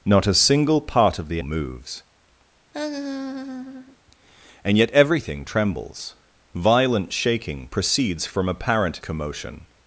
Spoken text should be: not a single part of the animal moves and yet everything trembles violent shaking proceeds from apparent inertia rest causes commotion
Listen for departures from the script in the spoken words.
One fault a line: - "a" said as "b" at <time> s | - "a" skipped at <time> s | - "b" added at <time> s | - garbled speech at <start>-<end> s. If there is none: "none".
- "animal" skipped at 1.4 s
- "inertia rest causes" skipped at 9.0 s